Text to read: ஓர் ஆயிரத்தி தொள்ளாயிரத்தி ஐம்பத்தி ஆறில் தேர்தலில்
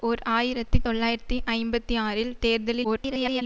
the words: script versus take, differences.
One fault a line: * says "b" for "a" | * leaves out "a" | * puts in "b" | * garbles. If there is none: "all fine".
* garbles